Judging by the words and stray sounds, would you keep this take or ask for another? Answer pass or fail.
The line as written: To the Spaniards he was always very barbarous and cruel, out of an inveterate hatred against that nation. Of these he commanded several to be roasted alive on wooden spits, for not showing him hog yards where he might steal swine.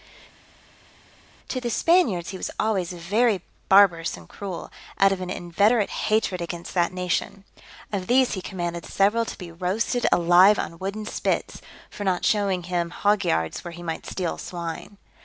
pass